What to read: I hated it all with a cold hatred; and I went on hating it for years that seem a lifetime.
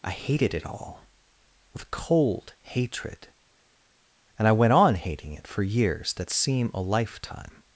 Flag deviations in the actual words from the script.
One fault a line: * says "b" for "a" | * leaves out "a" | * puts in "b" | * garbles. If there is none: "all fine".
* leaves out "a"